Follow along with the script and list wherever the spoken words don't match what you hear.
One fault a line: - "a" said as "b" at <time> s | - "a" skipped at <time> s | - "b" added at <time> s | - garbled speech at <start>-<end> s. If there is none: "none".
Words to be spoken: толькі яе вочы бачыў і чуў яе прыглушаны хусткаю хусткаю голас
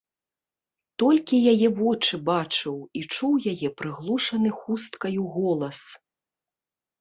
- "хусткаю" skipped at 5.2 s